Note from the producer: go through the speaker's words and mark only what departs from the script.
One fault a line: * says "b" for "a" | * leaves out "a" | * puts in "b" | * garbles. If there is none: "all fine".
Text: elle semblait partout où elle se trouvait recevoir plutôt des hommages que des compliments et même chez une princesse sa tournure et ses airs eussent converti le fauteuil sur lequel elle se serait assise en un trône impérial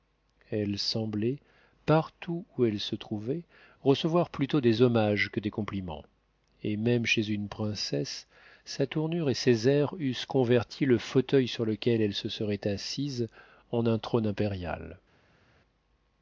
all fine